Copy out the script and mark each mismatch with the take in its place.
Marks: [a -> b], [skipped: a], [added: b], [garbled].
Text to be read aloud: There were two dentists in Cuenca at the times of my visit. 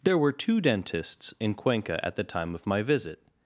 There were two dentists in Cuenca at the [times -> time] of my visit.